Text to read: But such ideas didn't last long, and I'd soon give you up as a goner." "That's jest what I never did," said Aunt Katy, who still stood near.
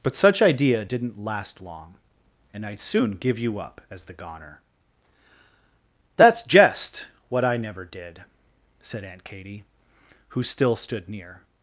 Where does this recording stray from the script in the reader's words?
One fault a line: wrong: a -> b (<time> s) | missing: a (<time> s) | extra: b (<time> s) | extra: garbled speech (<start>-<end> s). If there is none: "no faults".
wrong: ideas -> idea (0.4 s)
wrong: a -> the (4.0 s)